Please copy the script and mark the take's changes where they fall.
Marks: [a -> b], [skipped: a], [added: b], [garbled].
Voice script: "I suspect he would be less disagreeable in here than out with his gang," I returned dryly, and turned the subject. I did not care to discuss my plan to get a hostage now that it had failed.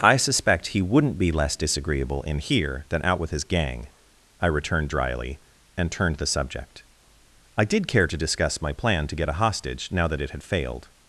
"I suspect he [would -> wouldn't] be less disagreeable in here than out with his gang," I returned dryly, and turned the subject. I did [skipped: not] care to discuss my plan to get a hostage now that it had failed.